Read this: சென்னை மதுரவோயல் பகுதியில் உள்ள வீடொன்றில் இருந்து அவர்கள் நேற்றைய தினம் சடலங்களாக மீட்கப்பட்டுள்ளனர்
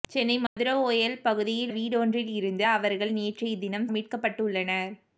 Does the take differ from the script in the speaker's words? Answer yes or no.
yes